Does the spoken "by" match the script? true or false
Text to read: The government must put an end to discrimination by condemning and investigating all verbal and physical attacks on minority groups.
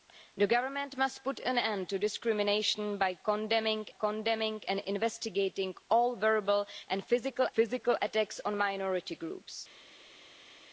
true